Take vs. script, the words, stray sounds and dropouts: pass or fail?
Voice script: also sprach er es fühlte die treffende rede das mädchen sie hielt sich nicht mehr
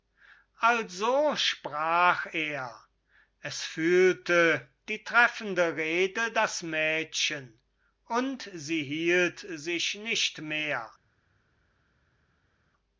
fail